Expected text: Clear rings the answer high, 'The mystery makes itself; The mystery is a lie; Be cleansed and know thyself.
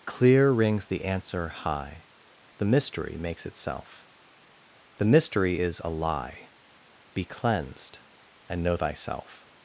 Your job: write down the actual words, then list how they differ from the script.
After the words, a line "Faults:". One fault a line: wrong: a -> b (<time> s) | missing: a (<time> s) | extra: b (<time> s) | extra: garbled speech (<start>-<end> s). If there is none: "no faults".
Clear rings the answer high, 'The mystery makes itself; The mystery is a lie; Be cleansed and know thyself.
Faults:
no faults